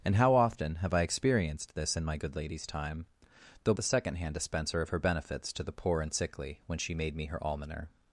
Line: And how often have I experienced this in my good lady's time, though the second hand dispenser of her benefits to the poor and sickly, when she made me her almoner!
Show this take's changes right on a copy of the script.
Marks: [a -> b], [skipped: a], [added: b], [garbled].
And how often have I experienced this in my good lady's time, though the second hand dispenser of her benefits to the poor and sickly, when she made me her almoner!